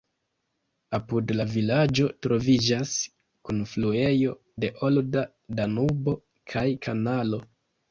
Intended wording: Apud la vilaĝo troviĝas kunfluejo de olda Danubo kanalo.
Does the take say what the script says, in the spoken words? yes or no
no